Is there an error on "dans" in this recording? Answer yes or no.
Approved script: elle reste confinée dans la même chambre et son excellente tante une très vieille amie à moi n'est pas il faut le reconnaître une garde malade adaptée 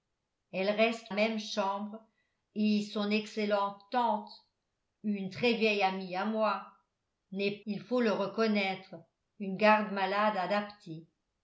yes